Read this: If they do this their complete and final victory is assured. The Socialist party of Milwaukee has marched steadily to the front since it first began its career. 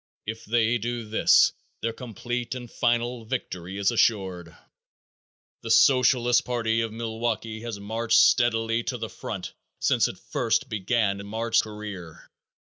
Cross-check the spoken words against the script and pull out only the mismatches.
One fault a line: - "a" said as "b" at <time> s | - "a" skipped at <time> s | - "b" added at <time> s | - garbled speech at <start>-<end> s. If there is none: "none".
- "its" said as "marched" at 11.2 s